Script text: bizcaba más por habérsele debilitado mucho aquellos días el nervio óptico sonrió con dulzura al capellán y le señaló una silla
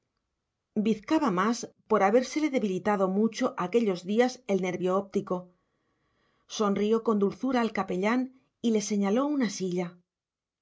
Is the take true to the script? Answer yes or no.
yes